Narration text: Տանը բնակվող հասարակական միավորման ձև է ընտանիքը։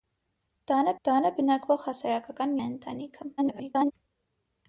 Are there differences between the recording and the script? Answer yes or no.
yes